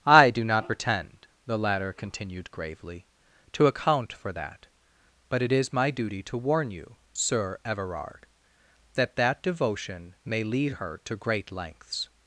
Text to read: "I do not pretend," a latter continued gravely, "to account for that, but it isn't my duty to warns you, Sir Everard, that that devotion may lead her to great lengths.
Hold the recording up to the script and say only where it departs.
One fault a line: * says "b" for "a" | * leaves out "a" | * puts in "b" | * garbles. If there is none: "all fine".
* says "the" for "a"
* says "is" for "isn't"
* says "warn" for "warns"